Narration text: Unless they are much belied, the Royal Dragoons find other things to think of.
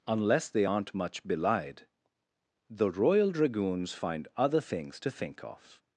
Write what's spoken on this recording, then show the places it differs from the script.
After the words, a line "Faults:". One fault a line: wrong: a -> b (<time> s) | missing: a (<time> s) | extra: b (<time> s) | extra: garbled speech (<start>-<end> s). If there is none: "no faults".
Unless they aren't much belied, the Royal Dragoons find other things to think of.
Faults:
wrong: are -> aren't (0.6 s)